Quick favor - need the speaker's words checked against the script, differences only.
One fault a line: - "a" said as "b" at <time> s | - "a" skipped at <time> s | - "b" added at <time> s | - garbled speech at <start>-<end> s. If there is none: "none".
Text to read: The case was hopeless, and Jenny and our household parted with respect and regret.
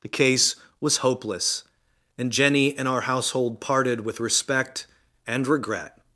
none